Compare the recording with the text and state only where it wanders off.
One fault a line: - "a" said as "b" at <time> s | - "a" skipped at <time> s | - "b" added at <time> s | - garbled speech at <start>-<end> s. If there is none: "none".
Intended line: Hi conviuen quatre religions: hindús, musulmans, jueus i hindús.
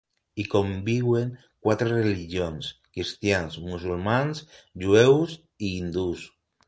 - "hindús" said as "cristians" at 3.0 s